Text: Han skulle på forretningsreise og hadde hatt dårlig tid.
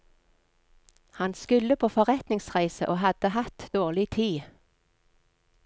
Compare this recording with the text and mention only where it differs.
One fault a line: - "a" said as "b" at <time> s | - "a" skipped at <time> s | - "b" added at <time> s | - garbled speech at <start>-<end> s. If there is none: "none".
none